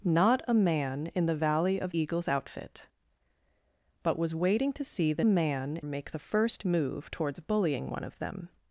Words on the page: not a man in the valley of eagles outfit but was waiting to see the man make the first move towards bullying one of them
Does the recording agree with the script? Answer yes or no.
yes